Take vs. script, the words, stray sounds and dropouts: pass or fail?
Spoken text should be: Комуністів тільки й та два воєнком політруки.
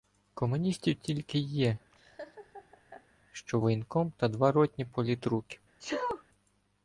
fail